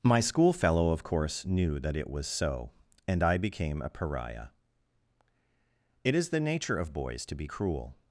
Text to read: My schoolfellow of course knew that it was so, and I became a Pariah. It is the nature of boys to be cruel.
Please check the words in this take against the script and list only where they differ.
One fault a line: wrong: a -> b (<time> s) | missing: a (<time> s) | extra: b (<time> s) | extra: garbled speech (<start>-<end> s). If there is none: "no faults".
no faults